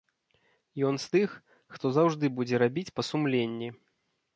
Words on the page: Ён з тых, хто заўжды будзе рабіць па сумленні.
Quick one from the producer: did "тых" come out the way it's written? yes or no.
yes